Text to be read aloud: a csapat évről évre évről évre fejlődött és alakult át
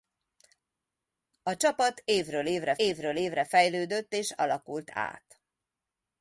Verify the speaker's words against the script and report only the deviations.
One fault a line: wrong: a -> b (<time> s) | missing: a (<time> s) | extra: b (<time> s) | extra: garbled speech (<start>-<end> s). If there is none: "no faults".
no faults